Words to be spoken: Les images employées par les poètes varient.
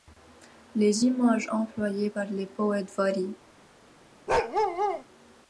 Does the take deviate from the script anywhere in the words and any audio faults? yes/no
yes